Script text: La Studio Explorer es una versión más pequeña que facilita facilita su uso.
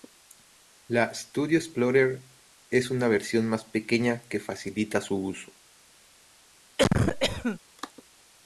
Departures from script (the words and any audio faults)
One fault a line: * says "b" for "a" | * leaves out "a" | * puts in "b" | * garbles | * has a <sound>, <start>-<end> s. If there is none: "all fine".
* leaves out "facilita"
* has a cough, 6.8-7.6 s